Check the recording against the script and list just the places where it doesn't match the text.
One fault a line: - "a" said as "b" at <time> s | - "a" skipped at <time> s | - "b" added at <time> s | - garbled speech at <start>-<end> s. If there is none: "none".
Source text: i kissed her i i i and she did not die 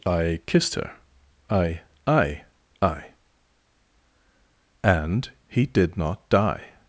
- "she" said as "he" at 5.5 s